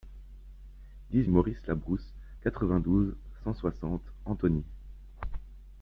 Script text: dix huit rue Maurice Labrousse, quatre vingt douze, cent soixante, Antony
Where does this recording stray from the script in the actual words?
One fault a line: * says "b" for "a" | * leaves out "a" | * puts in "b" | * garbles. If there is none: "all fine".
* leaves out "huit rue"